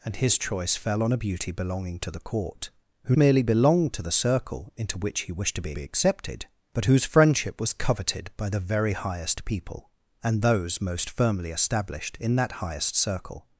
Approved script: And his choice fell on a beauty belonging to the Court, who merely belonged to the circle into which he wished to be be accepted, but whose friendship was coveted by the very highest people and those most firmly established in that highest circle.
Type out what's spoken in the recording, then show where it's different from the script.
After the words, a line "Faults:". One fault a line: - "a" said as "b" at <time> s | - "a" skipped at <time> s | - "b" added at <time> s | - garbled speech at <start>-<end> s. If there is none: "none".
And his choice fell on a beauty belonging to the Court, who merely belonged to the circle into which he wished to be be accepted, but whose friendship was coveted by the very highest people and those most firmly established in that highest circle.
Faults:
none